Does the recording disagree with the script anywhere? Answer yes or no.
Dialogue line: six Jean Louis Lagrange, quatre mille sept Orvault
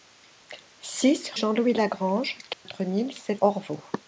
no